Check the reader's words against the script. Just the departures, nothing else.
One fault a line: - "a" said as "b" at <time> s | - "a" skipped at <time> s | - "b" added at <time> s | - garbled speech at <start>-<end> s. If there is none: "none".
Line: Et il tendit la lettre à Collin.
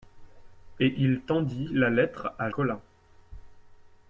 none